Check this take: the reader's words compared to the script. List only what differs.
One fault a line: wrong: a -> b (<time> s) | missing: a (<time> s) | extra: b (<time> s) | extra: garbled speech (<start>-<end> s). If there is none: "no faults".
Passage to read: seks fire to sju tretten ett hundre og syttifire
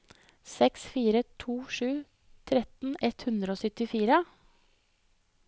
no faults